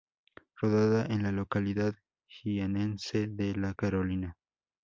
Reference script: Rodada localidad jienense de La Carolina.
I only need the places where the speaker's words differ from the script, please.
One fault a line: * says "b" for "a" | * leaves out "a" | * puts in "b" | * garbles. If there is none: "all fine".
* puts in "en la"